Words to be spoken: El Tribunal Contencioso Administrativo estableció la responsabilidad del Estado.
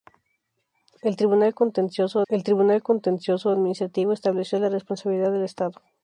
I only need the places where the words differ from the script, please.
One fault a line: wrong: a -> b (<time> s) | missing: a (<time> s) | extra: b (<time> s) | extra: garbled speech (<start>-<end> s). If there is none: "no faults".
extra: el Tribunal Contencioso (2.3 s)